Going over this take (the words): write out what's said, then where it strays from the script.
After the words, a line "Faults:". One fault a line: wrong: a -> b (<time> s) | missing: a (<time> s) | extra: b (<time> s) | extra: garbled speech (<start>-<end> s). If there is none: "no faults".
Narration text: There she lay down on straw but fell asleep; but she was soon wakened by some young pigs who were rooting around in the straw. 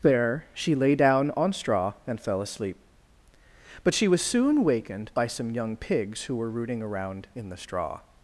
There she lay down on straw and fell asleep; but she was soon wakened by some young pigs who were rooting around in the straw.
Faults:
wrong: but -> and (2.1 s)